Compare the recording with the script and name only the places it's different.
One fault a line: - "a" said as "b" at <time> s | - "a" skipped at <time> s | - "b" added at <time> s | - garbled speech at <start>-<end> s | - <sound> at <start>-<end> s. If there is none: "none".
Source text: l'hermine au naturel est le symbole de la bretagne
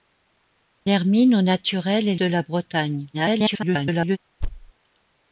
- "le symbole" skipped at 2.1 s
- garbled speech at 3.1-4.2 s
- thud at 4.4-4.7 s